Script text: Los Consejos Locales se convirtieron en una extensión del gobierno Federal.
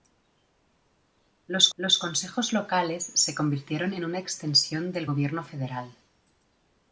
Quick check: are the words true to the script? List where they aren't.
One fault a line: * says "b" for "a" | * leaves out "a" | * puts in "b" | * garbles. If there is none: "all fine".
* puts in "los"